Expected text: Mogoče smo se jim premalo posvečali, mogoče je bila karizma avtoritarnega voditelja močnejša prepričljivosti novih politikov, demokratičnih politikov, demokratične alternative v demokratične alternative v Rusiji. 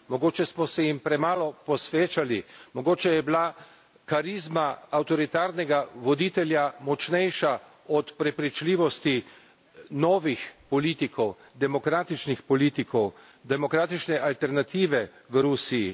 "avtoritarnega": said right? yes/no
yes